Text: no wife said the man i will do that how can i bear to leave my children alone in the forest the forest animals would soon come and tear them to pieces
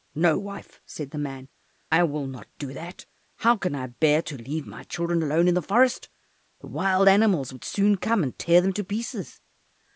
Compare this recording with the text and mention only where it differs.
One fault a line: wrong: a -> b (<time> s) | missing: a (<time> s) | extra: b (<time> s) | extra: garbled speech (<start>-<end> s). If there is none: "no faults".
extra: not (2.2 s)
wrong: forest -> wild (6.7 s)